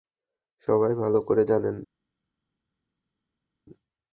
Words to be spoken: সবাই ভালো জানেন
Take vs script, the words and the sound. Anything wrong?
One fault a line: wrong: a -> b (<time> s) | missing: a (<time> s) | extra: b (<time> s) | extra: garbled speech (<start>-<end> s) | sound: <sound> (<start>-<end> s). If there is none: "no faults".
extra: করে (1.3 s)